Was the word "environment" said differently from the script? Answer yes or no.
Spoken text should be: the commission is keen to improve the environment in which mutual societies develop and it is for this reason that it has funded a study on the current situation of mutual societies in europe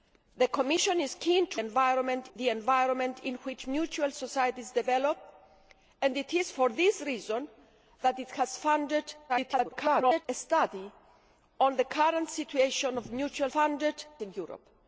no